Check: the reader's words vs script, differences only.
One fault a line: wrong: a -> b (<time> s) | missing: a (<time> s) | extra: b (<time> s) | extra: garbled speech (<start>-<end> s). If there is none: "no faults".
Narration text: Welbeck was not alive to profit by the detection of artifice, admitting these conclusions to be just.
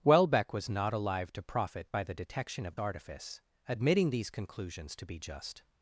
no faults